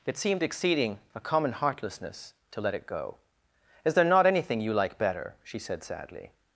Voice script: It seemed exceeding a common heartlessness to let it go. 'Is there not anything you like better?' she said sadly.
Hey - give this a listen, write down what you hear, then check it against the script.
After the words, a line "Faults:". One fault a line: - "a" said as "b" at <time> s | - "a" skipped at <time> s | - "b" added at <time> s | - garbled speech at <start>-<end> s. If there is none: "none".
It seemed exceeding a common heartlessness to let it go. 'Is there not anything you like better?' she said sadly.
Faults:
none